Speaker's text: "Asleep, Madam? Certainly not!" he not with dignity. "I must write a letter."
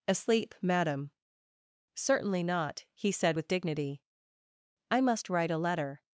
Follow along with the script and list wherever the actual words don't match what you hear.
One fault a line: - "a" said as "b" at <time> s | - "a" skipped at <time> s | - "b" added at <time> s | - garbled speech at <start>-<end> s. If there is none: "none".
- "not" said as "said" at 3.1 s